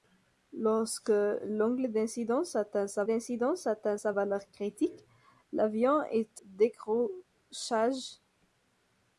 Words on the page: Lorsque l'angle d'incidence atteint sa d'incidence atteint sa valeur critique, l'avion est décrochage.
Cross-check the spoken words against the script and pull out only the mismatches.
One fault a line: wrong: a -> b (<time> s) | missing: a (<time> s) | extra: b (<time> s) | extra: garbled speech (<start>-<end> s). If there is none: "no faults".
no faults